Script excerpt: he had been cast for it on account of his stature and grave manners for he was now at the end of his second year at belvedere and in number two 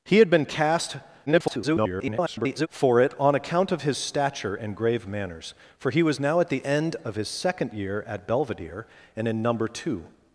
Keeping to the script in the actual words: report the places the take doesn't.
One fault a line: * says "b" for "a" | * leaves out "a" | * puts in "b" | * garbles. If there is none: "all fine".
* garbles